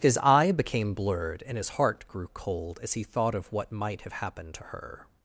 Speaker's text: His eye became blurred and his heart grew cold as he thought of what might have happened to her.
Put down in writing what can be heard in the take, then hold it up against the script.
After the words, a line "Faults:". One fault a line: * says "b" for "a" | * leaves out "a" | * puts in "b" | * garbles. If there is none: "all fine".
His eye became blurred and his heart grew cold as he thought of what might have happened to her.
Faults:
all fine